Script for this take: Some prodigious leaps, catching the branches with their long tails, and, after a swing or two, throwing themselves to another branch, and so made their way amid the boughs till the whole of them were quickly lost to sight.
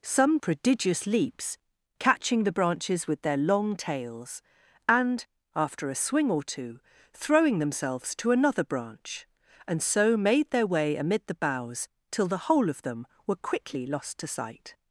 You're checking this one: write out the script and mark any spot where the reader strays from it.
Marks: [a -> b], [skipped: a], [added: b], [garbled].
Some prodigious leaps, catching the branches with their long tails, and, after a swing or two, throwing themselves to another branch, and so made their way amid the boughs till the whole of them were quickly lost to sight.